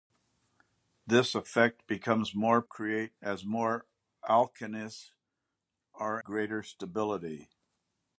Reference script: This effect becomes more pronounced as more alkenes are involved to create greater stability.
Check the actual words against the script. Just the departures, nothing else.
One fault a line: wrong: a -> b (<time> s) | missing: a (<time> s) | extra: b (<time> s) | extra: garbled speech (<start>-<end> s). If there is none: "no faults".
wrong: pronounced -> create (2.6 s)
missing: involved to create (6.2 s)